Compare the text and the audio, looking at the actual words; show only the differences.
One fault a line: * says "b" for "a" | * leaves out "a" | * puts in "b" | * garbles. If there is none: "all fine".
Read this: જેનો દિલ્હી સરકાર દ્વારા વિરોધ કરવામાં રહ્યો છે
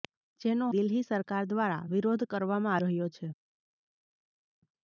all fine